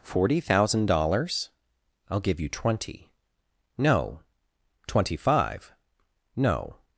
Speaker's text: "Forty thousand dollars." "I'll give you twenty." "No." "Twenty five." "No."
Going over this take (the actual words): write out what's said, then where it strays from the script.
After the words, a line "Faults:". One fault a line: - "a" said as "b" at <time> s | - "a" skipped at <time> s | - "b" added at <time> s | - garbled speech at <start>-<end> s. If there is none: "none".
"Forty thousand dollars." "I'll give you twenty." "No." "Twenty five." "No."
Faults:
none